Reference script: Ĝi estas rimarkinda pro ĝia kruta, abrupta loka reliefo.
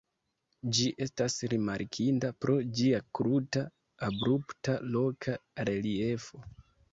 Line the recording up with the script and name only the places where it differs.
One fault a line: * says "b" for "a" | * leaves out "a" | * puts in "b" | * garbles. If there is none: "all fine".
all fine